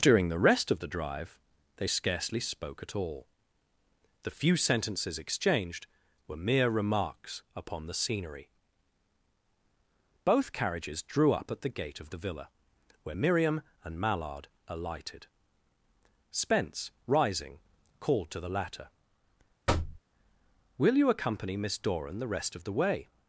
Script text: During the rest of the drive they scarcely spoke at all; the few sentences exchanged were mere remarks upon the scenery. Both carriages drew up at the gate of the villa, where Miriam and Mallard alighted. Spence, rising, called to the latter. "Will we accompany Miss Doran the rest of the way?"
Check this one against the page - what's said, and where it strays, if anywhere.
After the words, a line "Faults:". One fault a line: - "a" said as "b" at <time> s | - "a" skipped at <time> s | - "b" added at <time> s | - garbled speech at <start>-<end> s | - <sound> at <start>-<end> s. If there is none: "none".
During the rest of the drive they scarcely spoke at all; the few sentences exchanged were mere remarks upon the scenery. Both carriages drew up at the gate of the villa, where Miriam and Mallard alighted. Spence, rising, called to the latter. "Will you accompany Miss Doran the rest of the way?"
Faults:
- thud at 19.7-20.0 s
- "we" said as "you" at 20.9 s